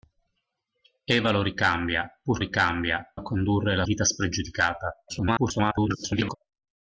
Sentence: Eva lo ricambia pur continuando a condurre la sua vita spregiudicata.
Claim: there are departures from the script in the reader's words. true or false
true